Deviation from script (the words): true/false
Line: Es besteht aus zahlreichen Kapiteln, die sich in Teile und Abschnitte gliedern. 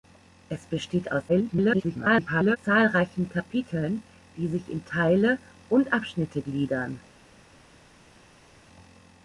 true